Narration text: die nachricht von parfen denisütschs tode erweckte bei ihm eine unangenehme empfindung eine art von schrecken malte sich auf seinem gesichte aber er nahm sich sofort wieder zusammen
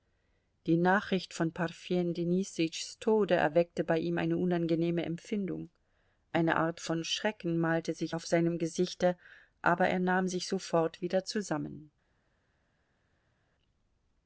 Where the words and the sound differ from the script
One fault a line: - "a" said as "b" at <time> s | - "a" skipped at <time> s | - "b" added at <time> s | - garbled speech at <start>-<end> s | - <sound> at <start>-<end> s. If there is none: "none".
none